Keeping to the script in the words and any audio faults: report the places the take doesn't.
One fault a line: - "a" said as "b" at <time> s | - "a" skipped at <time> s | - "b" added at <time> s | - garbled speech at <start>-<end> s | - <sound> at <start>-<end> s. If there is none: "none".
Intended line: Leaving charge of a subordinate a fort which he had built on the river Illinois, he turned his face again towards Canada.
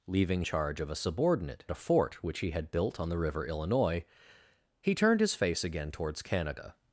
none